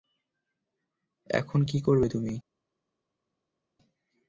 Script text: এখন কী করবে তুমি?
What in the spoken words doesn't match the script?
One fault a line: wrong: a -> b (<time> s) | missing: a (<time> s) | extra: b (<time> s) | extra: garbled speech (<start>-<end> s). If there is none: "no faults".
no faults